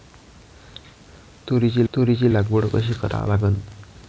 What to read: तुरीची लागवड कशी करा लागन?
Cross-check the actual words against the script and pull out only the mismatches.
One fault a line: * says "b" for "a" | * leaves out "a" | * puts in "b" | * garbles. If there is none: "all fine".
* puts in "तुरीची"